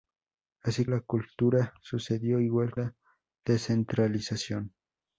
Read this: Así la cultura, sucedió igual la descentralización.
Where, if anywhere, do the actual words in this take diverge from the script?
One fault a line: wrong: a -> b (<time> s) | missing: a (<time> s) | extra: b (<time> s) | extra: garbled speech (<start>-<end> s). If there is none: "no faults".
no faults